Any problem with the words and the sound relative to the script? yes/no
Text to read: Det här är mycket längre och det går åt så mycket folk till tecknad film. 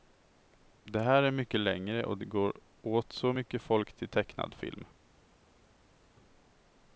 no